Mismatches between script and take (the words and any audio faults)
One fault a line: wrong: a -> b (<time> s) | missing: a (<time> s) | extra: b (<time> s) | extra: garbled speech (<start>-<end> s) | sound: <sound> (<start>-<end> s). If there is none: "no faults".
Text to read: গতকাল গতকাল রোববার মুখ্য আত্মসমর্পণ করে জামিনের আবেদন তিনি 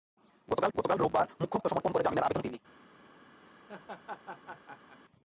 sound: laugh (3.5-5.0 s)